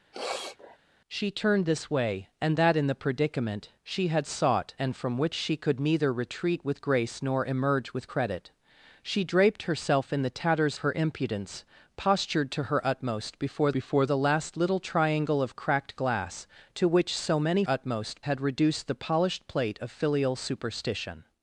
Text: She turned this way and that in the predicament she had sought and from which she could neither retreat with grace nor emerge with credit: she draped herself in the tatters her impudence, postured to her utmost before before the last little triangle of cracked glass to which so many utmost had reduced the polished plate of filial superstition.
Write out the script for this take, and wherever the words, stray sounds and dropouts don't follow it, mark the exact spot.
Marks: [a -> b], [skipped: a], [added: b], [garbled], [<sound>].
[sniff] She turned this way and that in the predicament she had sought and from which she could neither retreat with grace nor emerge with credit: she draped herself in the tatters her impudence, postured to her utmost before before the last little triangle of cracked glass to which so many utmost had reduced the polished plate of filial superstition.